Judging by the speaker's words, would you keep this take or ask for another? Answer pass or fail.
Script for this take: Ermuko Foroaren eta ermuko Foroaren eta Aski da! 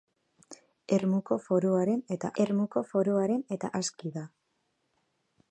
pass